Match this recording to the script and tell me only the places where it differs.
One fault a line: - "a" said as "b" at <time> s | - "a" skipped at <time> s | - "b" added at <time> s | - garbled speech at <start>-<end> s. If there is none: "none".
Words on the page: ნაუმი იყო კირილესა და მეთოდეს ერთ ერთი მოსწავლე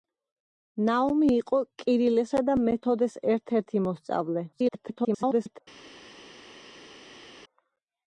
- garbled speech at 4.5-5.6 s